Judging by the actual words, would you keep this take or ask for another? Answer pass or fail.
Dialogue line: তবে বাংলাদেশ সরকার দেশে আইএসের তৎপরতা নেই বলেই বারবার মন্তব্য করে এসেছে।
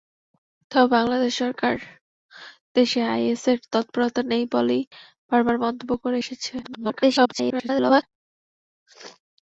fail